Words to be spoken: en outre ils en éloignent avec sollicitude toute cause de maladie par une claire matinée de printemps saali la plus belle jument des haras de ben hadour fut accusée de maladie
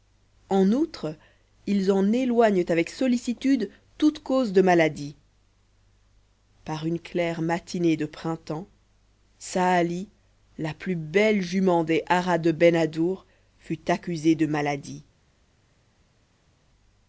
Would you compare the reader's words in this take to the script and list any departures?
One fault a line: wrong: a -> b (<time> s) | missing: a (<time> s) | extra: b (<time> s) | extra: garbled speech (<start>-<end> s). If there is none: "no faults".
no faults